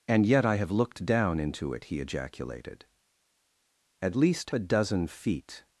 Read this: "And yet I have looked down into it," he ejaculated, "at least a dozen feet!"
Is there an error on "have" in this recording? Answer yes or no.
no